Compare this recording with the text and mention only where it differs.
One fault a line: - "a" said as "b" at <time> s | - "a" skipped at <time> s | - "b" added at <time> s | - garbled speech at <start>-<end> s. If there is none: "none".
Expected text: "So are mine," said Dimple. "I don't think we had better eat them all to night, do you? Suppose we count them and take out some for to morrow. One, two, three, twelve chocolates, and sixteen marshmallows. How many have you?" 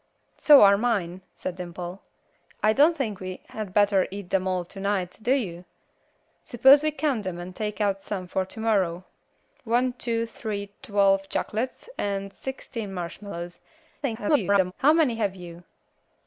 - garbled speech at 14.0-14.7 s